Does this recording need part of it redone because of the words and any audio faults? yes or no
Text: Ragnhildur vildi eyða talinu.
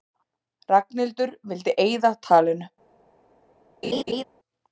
yes